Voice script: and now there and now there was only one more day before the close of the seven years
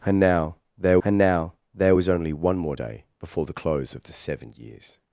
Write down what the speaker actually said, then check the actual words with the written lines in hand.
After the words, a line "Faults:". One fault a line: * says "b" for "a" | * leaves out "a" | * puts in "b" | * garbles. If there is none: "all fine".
and now there and now there was only one more day before the close of the seven years
Faults:
all fine